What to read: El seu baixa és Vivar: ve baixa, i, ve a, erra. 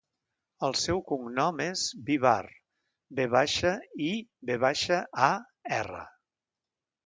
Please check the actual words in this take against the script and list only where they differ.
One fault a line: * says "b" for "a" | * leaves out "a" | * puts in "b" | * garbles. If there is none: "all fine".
* says "cognom" for "baixa"
* puts in "baixa"